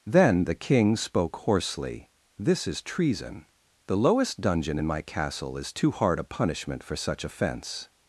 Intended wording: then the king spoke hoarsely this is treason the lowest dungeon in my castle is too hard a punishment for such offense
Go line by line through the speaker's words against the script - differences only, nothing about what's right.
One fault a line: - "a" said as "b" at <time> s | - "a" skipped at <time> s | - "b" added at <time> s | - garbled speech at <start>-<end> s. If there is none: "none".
none